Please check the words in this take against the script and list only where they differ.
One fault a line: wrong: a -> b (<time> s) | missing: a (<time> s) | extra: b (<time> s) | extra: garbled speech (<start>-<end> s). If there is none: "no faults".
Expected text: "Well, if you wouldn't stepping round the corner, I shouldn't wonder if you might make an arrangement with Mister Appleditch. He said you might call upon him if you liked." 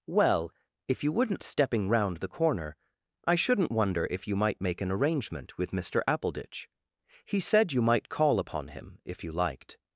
no faults